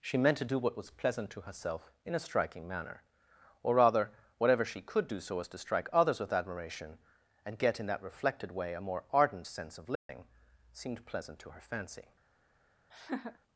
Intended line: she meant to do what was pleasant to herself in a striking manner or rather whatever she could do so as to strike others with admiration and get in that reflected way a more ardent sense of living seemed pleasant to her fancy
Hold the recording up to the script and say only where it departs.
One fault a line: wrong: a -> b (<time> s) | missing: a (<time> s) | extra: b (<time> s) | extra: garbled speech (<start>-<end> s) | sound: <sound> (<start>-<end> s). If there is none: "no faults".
sound: dropout (10.0-10.1 s)
sound: laugh (12.9-13.4 s)